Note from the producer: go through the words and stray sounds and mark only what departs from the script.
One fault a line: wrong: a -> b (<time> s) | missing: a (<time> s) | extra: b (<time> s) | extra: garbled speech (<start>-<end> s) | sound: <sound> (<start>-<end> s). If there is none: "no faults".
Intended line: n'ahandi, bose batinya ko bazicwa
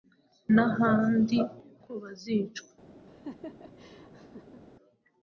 missing: bose batinya (1.4 s)
sound: laugh (3.1-4.6 s)